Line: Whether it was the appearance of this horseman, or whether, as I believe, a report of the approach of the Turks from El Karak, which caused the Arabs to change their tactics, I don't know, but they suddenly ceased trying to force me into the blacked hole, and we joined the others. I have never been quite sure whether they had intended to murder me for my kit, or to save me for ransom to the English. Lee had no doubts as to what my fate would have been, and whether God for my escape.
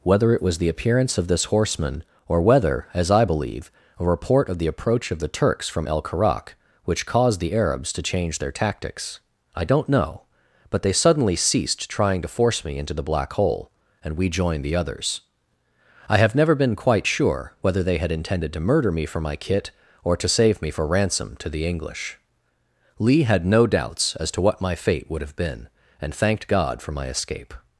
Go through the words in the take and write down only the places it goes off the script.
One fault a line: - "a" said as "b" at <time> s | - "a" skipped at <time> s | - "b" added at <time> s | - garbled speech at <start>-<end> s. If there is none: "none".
- "blacked" said as "black" at 13.0 s
- "whether" said as "thanked" at 26.1 s